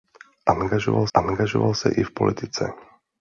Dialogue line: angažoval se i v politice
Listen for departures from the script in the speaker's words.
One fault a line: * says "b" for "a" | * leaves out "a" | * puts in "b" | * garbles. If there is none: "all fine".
* puts in "angažoval"